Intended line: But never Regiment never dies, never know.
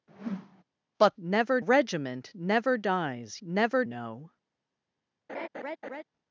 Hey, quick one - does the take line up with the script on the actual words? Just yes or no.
yes